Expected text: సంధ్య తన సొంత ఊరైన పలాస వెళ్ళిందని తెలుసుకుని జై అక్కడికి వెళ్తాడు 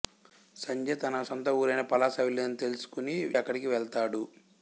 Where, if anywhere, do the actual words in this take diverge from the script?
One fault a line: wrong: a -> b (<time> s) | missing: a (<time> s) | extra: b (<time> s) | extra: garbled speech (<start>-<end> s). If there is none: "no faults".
missing: జై (3.2 s)